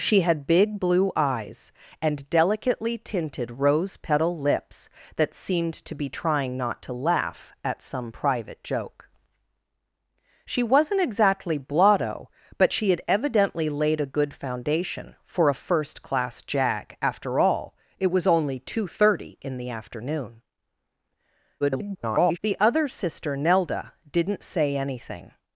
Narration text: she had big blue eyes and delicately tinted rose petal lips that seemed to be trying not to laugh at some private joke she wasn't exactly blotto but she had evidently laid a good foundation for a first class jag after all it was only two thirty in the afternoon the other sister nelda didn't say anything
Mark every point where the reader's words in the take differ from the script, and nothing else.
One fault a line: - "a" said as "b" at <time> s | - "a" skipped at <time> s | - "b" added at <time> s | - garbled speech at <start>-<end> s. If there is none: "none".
- garbled speech at 21.6-22.4 s